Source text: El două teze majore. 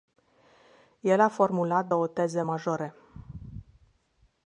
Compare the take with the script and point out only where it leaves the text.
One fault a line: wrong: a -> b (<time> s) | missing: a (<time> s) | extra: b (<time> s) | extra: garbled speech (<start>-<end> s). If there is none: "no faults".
extra: a formulat (1.2 s)